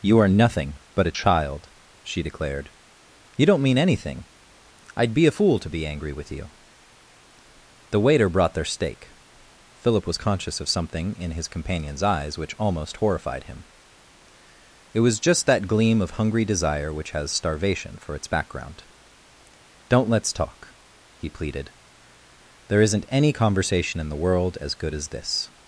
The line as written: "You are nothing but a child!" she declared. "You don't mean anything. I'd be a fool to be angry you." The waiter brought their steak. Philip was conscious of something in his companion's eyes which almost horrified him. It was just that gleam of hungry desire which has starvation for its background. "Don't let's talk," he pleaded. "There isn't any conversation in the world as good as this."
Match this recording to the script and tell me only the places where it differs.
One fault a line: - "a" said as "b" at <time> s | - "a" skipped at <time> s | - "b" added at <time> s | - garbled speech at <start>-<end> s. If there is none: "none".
- "with" added at 6.1 s